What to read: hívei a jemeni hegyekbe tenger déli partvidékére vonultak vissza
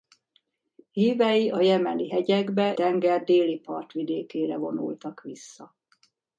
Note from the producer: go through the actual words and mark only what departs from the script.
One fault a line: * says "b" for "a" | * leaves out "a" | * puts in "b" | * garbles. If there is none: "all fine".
all fine